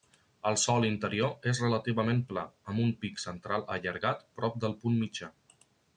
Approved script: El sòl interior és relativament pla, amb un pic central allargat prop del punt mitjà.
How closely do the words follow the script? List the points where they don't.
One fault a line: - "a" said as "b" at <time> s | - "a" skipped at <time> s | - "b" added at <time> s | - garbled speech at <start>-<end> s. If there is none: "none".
none